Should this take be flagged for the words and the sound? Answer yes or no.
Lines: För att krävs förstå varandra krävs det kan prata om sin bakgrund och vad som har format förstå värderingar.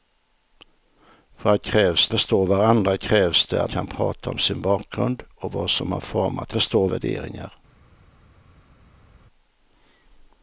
no